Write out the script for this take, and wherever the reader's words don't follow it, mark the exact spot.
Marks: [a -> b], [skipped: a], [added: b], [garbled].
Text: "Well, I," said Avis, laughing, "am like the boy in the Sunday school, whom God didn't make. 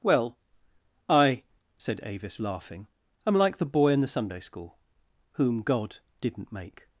"Well, I," said Avis, laughing, "am like the boy in the Sunday school, whom God didn't make.